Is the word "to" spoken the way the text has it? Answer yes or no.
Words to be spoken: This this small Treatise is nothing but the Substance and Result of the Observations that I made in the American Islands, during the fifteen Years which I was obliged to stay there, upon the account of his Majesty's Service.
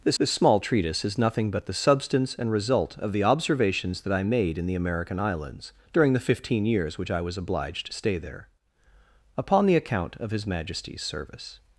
yes